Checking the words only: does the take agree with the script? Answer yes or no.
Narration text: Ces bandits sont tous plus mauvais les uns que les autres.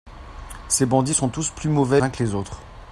no